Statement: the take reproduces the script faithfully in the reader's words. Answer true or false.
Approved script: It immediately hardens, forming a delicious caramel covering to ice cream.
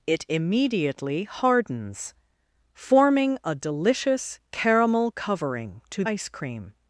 true